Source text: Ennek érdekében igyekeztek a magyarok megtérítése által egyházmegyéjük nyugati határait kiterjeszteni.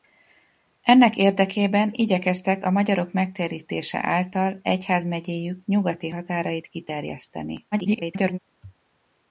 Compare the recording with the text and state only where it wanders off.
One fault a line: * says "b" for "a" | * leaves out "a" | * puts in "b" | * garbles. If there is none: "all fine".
* garbles